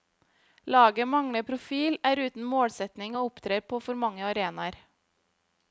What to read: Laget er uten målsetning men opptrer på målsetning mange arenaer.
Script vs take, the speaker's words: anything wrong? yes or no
yes